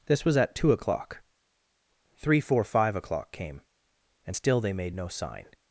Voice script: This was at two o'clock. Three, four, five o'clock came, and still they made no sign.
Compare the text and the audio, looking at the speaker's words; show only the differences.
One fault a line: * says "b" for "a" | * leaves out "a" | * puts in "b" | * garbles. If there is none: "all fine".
all fine